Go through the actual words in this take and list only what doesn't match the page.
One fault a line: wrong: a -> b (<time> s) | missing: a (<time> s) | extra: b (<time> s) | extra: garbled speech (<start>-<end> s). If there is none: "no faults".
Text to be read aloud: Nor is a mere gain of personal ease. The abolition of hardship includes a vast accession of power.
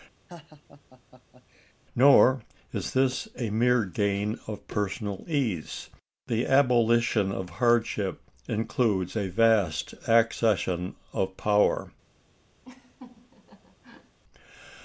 extra: this (2.9 s)